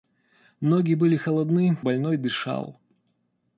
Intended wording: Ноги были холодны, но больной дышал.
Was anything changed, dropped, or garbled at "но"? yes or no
yes